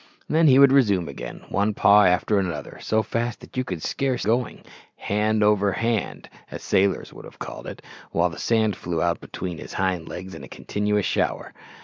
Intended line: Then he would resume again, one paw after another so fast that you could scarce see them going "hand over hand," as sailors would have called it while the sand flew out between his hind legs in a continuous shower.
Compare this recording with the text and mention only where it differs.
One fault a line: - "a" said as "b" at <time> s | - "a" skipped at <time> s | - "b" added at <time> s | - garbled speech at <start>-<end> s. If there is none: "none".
- "see them" skipped at 4.2 s